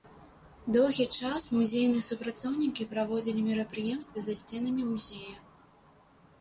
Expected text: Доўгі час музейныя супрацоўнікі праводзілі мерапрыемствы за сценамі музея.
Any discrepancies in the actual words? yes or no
no